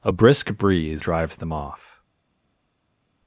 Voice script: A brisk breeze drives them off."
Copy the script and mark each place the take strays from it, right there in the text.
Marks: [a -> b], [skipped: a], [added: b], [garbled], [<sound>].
A brisk breeze drives them off."